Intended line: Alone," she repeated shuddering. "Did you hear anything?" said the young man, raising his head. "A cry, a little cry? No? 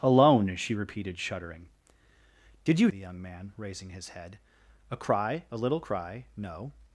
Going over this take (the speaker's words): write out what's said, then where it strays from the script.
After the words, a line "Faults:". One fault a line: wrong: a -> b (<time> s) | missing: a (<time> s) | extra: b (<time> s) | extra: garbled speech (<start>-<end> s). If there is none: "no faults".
Alone," she repeated shuddering. "Did you the young man, raising his head. "A cry, a little cry? No?
Faults:
missing: hear anything said (2.9 s)